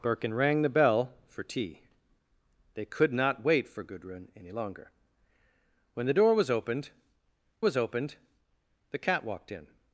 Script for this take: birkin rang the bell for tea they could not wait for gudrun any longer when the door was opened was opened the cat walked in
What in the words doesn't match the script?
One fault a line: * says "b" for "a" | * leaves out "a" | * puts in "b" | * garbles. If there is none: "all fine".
all fine